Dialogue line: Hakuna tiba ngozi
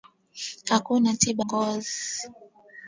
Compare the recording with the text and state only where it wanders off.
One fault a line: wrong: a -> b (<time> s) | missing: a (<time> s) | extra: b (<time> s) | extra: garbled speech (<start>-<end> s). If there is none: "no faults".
no faults